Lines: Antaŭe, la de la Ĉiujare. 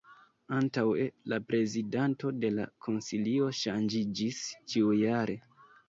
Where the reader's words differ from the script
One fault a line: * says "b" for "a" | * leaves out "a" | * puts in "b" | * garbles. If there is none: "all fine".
* puts in "prezidanto"
* puts in "Konsilio ŝanĝiĝis"